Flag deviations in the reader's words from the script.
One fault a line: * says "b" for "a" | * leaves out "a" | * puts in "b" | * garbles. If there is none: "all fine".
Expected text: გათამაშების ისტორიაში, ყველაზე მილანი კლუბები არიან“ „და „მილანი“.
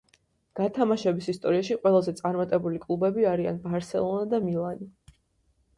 * says "წარმატებული" for "მილანი"
* puts in "ბარსელონა"